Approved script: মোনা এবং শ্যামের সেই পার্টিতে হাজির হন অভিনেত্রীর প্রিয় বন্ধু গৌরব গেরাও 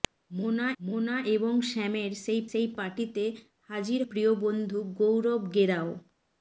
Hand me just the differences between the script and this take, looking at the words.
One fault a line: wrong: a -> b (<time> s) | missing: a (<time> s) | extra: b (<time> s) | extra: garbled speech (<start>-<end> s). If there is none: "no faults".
extra: মোনা (0.8 s)
extra: সেই (2.5 s)
missing: হন অভিনেত্রীর (4.0 s)